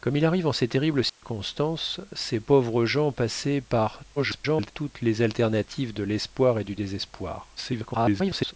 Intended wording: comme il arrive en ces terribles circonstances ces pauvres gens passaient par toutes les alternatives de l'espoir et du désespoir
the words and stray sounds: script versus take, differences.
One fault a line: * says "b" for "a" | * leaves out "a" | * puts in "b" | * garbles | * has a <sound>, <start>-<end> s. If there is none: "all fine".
* has a dropout, 1.1-1.2 s
* garbles
* garbles